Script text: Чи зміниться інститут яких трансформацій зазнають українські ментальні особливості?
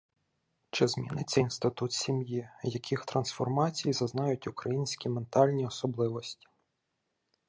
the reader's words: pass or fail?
fail